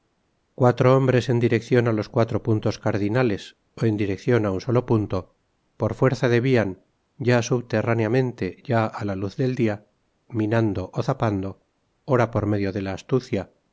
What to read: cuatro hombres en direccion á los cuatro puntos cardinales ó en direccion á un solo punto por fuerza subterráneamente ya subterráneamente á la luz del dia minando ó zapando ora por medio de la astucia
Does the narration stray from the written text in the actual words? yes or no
yes